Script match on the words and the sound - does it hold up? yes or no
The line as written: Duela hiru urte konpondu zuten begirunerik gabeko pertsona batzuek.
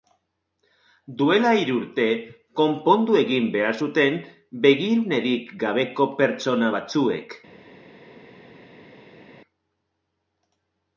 no